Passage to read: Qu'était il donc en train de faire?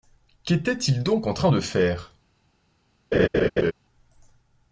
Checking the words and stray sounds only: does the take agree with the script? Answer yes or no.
no